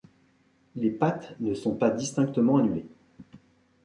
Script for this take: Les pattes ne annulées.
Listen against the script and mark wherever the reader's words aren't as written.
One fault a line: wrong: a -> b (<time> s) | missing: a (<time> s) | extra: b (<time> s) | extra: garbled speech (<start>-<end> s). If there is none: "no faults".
extra: sont pas distinctement (1.5 s)